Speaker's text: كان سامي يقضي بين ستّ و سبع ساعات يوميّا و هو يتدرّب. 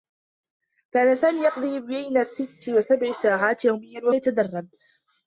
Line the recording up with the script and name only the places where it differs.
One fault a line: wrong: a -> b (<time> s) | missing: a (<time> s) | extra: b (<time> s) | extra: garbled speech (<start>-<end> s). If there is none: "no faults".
missing: هو (4.1 s)